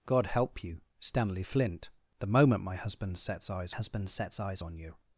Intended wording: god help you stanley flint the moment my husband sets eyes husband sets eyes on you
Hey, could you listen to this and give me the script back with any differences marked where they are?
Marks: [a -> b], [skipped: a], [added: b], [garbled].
god help you stanley flint the moment my husband sets eyes husband sets eyes on you